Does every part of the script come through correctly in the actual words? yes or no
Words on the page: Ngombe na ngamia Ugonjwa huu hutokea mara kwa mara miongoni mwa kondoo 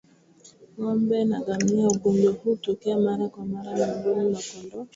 yes